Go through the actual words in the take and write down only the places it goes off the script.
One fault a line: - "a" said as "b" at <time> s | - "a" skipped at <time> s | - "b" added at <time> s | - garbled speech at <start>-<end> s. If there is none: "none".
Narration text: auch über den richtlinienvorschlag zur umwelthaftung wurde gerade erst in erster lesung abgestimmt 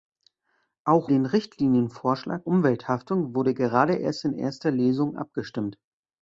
- "über" skipped at 1.1 s
- "zur" skipped at 2.5 s